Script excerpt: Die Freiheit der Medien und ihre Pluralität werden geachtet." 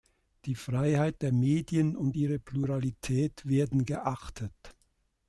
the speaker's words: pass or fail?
pass